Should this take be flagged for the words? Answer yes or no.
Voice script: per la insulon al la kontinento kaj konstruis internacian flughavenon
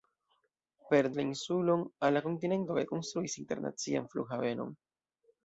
no